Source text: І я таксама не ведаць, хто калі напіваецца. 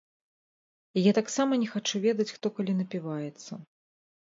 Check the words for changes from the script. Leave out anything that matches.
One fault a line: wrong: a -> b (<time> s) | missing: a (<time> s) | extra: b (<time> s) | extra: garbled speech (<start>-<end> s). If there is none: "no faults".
extra: хачу (1.7 s)